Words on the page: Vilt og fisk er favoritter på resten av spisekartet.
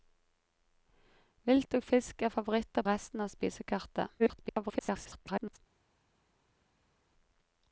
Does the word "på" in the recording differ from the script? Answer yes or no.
yes